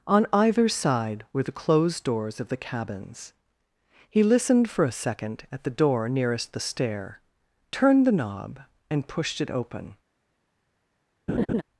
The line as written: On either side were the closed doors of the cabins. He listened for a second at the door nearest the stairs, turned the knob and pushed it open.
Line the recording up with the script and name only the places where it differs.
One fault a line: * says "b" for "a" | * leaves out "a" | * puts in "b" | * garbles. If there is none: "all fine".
* says "stair" for "stairs"